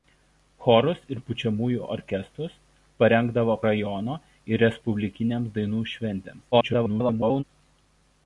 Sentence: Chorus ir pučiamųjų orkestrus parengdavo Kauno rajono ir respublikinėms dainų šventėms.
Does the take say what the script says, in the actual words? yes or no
no